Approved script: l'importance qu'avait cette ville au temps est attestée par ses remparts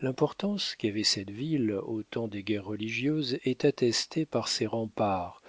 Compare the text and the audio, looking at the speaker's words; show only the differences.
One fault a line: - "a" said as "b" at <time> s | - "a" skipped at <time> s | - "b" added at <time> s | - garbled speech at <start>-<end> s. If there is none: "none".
- "des guerres religieuses" added at 2.3 s